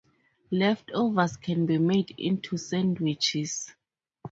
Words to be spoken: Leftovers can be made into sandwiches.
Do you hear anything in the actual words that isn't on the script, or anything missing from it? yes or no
no